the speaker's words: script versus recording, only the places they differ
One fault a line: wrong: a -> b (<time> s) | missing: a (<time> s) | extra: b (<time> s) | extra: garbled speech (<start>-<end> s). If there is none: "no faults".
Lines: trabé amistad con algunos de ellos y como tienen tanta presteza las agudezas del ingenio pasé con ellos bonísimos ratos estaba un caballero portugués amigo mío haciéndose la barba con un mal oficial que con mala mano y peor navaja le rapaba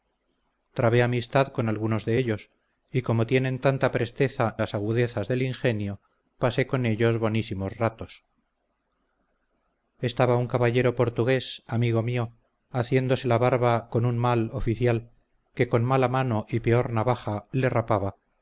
no faults